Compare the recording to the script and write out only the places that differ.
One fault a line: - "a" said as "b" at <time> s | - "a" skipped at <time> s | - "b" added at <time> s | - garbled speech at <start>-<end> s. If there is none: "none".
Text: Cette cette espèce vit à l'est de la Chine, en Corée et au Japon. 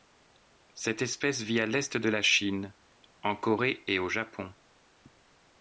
- "cette" skipped at 1.0 s